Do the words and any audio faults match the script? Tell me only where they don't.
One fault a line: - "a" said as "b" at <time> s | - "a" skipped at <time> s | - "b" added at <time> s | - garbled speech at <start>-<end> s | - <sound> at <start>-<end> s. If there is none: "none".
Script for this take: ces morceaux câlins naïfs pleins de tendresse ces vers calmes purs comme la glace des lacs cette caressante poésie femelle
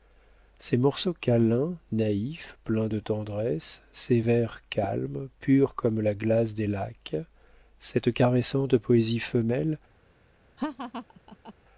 - laugh at 10.6-11.5 s